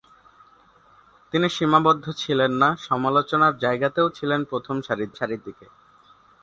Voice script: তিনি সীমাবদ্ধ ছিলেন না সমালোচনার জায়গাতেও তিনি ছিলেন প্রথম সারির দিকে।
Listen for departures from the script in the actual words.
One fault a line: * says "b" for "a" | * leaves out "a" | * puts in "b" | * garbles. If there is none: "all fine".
* leaves out "তিনি"
* puts in "সারির"